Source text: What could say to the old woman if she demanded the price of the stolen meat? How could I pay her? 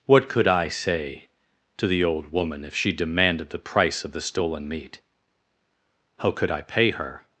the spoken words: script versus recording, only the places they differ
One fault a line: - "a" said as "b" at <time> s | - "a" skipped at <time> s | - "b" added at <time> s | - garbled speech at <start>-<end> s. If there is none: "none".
- "I" added at 0.5 s